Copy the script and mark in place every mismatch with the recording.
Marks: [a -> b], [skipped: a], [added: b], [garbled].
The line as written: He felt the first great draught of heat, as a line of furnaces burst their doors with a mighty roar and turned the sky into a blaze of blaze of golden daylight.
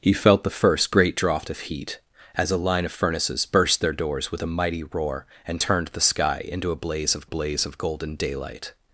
He felt the first great draught of heat, as a line of furnaces burst their doors with a mighty roar and turned the sky into a blaze of blaze of golden daylight.